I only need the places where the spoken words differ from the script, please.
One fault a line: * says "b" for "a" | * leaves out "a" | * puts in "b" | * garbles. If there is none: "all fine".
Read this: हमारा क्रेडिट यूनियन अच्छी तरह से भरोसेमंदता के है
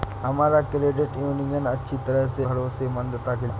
all fine